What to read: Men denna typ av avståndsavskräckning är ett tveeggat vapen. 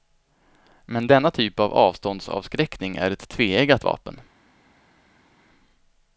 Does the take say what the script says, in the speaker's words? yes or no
yes